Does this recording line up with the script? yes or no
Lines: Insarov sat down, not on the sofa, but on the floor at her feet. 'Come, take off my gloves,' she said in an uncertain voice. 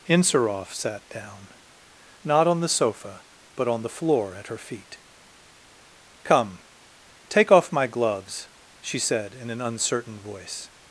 yes